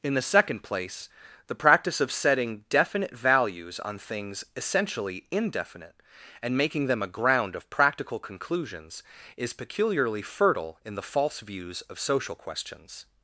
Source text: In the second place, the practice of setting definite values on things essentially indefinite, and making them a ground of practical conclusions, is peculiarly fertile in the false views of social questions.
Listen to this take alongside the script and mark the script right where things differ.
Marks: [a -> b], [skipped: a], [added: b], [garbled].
In the second place, the practice of setting definite values on things essentially indefinite, and making them a ground of practical conclusions, is peculiarly fertile in the false views of social questions.